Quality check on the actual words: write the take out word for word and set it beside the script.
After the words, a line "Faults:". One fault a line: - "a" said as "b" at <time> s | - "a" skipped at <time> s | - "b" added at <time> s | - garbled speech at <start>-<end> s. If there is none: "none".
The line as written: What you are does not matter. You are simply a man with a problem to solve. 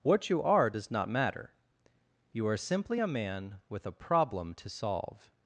What you are does not matter. You are simply a man with a problem to solve.
Faults:
none